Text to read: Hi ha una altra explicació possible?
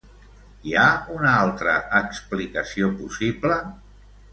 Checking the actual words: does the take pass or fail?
pass